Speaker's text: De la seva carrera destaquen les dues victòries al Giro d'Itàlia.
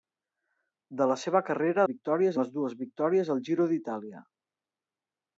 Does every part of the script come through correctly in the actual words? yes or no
no